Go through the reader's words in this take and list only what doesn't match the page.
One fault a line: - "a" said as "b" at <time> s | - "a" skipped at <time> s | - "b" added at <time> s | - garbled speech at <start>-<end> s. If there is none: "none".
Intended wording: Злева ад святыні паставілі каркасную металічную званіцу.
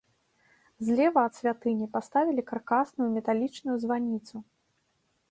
none